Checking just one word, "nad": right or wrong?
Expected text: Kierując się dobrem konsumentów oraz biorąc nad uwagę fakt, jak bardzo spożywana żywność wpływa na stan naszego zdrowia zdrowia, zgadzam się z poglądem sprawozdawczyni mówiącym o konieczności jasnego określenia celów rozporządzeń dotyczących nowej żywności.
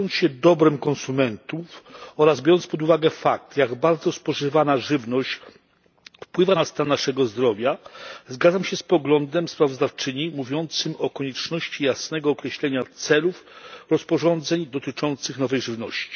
wrong